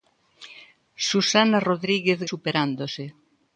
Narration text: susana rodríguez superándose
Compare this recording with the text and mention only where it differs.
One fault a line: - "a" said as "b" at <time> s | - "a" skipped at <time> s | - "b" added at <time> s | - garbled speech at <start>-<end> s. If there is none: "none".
none